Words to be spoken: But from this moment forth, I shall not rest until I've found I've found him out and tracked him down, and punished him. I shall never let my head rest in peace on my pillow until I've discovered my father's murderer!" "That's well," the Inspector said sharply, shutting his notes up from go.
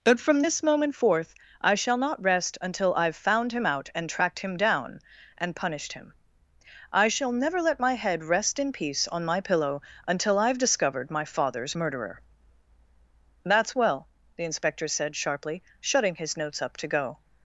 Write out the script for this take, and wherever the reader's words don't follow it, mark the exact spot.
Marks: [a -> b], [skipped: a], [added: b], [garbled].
But from this moment forth, I shall not rest until I've found [skipped: I've found] him out and tracked him down, and punished him. I shall never let my head rest in peace on my pillow until I've discovered my father's murderer!" "That's well," the Inspector said sharply, shutting his notes up [from -> to] go.